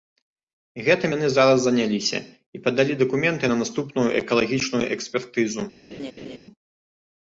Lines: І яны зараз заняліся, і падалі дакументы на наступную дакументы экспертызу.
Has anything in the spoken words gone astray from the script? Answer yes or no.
yes